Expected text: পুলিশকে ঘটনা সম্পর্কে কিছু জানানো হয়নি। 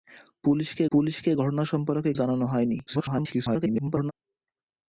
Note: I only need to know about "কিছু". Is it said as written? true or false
false